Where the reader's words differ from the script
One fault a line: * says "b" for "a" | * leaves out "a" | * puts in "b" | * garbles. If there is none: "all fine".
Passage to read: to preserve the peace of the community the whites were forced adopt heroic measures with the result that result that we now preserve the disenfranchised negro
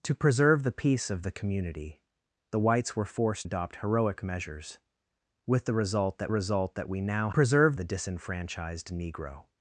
all fine